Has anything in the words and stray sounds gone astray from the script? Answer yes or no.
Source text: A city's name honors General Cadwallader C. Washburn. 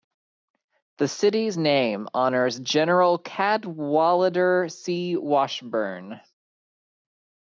yes